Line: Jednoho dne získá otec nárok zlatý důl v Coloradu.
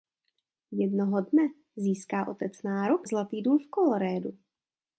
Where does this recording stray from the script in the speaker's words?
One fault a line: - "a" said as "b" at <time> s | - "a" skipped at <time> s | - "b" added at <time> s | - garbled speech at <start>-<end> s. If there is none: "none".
none